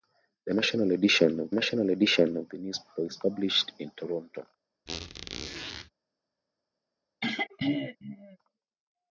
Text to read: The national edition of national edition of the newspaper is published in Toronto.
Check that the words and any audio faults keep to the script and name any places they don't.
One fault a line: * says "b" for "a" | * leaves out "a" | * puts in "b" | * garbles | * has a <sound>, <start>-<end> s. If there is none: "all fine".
* has a squeak, 4.9-5.9 s
* has a throat clearing, 7.2-8.4 s